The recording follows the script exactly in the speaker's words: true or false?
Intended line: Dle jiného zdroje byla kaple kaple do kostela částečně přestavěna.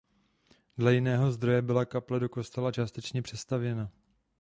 false